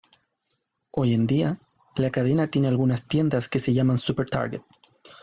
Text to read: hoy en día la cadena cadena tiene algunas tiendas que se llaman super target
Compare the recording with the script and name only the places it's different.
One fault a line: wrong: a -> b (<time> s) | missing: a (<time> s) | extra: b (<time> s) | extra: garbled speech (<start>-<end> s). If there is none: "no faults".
missing: cadena (2.5 s)